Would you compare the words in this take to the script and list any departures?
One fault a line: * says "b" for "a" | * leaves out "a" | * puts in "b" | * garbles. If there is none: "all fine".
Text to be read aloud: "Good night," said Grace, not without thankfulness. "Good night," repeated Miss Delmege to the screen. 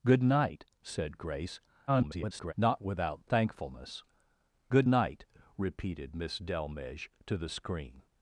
* garbles